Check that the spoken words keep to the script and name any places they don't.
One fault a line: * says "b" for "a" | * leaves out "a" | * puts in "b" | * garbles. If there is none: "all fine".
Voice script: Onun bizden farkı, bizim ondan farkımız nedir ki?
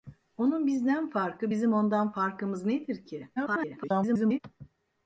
* garbles